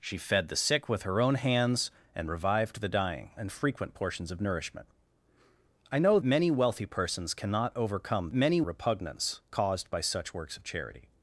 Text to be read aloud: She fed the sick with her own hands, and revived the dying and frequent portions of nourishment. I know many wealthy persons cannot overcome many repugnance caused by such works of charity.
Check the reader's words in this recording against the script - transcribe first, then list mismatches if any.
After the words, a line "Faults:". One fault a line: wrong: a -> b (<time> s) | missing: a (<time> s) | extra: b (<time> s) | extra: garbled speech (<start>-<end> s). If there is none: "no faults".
She fed the sick with her own hands, and revived the dying and frequent portions of nourishment. I know many wealthy persons cannot overcome many repugnance caused by such works of charity.
Faults:
no faults